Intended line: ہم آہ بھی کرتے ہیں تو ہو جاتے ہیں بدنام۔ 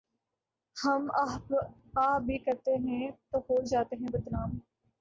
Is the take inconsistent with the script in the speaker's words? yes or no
no